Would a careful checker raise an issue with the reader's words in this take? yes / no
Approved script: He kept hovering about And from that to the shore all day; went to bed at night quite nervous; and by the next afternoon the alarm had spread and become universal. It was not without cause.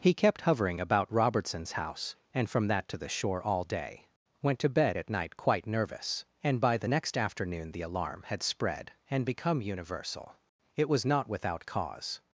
yes